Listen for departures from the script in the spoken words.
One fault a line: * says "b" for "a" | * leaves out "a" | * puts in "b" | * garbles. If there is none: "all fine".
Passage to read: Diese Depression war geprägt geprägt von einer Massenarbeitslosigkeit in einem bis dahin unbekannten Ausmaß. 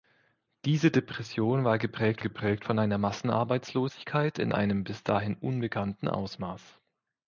all fine